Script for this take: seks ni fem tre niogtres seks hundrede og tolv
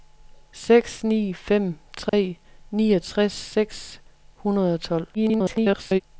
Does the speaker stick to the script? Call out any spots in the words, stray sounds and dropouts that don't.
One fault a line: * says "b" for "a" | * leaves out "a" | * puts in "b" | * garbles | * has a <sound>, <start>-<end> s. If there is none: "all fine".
* has a dropout, 2.1-2.1 s
* garbles